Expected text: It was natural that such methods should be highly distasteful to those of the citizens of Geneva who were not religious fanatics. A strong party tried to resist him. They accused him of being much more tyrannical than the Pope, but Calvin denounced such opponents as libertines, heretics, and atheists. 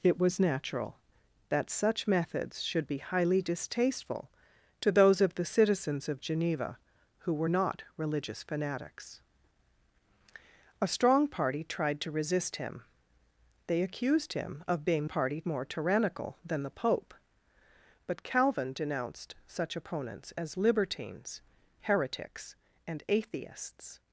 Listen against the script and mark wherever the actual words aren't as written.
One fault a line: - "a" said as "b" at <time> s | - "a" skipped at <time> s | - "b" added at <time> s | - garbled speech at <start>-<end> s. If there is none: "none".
- "much" said as "party" at 15.0 s